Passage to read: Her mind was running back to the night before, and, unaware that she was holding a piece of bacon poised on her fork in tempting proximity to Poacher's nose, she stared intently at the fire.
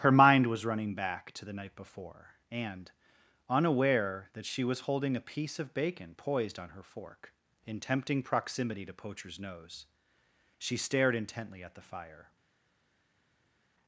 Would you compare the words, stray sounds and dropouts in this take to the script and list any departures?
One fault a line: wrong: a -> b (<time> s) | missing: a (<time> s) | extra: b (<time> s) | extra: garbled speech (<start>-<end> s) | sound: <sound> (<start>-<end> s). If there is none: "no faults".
no faults